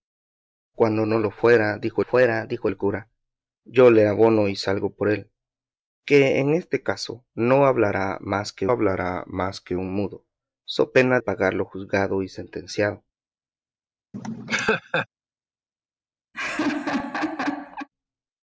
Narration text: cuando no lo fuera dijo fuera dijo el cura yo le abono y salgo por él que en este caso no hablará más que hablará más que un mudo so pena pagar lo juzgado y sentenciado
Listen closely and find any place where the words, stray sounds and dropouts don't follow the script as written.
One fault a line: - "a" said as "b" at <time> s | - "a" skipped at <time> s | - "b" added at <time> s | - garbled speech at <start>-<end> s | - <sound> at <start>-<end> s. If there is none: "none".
- laugh at 14.1-15.1 s
- laugh at 16.3-17.9 s